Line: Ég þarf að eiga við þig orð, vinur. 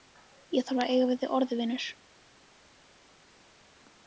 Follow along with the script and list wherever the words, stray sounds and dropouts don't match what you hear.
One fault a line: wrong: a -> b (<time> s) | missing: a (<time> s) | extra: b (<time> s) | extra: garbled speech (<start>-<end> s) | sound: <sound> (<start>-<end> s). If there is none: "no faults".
no faults